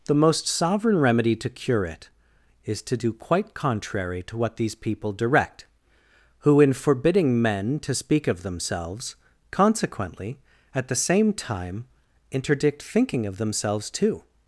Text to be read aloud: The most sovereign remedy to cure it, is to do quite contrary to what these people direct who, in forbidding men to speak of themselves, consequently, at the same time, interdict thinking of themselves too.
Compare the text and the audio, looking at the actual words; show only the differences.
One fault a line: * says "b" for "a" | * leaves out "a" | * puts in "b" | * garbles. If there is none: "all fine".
all fine